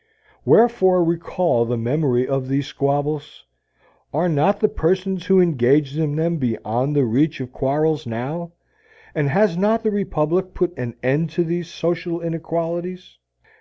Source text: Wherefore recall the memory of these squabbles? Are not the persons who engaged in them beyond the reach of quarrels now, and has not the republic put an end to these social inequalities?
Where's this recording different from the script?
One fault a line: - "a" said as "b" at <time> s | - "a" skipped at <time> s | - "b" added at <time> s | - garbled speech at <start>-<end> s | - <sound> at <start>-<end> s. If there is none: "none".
none